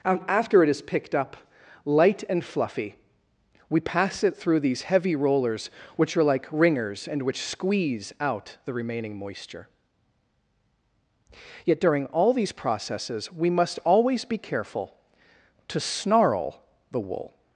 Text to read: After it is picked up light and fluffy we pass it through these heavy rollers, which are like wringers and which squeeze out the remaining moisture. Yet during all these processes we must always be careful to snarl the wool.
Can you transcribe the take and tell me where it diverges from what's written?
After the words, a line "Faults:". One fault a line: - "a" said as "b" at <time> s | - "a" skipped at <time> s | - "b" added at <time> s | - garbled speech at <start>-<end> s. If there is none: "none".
After it is picked up light and fluffy we pass it through these heavy rollers, which are like wringers and which squeeze out the remaining moisture. Yet during all these processes we must always be careful to snarl the wool.
Faults:
none